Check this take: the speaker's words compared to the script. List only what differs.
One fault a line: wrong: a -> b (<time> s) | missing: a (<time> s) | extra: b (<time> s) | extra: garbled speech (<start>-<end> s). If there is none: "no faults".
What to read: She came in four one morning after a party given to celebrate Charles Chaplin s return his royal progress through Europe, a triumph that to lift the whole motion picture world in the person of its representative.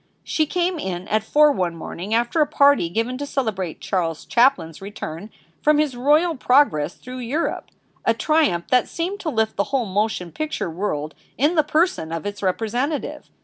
extra: at (1.1 s)
extra: from (5.6 s)
extra: seemed (8.9 s)